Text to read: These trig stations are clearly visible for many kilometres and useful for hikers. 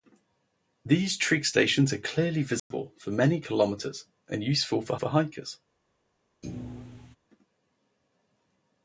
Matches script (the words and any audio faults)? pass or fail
fail